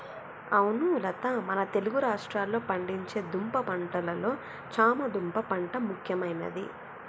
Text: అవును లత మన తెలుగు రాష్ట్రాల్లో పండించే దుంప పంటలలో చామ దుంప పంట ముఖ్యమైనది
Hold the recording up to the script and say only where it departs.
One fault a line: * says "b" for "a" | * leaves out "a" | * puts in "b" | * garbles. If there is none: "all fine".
all fine